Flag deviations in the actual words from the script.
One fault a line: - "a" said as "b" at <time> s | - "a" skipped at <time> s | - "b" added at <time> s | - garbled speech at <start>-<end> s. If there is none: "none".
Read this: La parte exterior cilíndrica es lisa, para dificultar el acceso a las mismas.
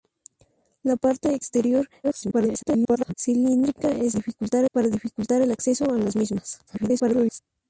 - garbled speech at 2.0-3.1 s
- "lisa" said as "dificultar" at 4.1 s
- garbled speech at 6.7-7.4 s